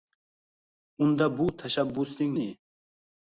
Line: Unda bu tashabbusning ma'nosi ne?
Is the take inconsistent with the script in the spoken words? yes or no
yes